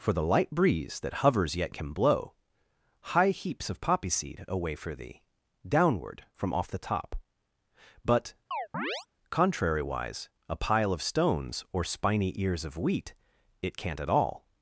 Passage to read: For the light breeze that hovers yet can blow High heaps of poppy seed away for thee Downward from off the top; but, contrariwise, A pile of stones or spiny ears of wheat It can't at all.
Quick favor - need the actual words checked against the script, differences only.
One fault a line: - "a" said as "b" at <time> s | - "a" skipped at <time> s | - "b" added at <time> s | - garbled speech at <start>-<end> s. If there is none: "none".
none